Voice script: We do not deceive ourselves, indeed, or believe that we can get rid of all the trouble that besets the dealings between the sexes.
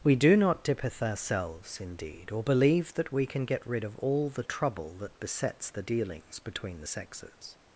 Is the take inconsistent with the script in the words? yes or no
yes